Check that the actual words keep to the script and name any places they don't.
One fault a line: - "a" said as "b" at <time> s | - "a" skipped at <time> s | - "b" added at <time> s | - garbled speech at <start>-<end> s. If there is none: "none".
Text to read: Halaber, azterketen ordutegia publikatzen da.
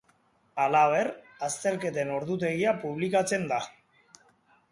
none